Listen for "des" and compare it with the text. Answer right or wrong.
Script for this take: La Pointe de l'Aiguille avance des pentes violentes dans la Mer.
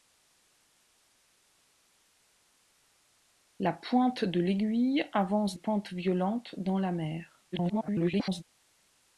wrong